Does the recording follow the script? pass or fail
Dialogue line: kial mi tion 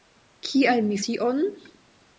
pass